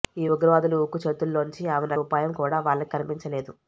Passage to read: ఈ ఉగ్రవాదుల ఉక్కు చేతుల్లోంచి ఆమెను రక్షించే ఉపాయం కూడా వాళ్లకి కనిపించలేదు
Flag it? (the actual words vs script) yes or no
yes